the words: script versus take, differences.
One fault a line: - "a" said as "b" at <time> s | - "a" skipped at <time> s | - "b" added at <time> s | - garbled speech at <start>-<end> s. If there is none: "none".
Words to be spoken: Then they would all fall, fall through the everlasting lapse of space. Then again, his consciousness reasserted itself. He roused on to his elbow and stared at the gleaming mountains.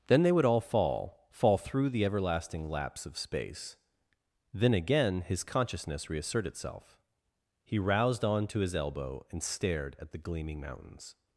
- "reasserted" said as "reassert" at 6.1 s